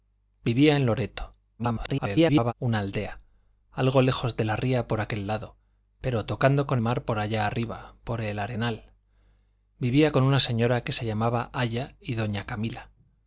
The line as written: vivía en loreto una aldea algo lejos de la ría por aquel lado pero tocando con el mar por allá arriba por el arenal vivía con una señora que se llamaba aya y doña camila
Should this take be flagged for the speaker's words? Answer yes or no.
yes